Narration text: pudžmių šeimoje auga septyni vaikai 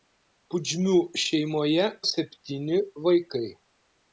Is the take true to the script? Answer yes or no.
no